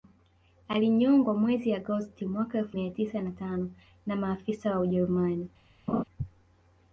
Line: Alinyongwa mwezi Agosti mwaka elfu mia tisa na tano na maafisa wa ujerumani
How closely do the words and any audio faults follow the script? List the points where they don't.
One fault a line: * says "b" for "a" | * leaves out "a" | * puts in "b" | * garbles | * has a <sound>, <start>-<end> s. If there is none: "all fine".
* has a laugh, 5.9-6.0 s